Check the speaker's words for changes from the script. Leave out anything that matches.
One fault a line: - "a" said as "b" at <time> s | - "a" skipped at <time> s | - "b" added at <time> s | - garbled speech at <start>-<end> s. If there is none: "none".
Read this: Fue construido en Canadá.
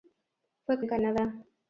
- "construido" skipped at 0.8 s